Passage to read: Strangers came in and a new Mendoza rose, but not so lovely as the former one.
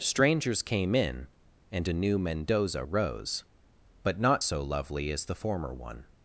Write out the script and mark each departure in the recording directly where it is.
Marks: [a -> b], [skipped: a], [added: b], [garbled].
Strangers came in and a new Mendoza rose, but not so lovely as the former one.